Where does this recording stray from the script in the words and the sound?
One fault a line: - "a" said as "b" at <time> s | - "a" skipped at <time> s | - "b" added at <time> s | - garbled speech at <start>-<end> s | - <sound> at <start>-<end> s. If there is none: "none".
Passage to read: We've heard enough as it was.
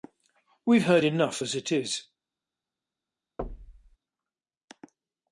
- "was" said as "is" at 1.7 s
- thud at 3.4-4.0 s